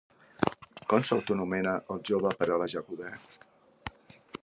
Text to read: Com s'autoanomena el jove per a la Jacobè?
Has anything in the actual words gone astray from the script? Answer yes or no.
no